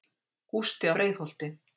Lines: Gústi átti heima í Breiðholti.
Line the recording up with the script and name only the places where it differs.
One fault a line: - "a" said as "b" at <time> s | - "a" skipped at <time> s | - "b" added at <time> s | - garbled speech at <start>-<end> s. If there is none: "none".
- "átti heima" skipped at 0.9 s